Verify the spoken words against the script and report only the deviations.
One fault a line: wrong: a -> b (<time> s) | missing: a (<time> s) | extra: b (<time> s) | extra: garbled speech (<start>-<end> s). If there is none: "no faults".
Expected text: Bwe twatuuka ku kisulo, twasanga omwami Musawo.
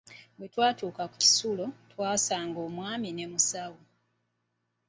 extra: ne (3.1 s)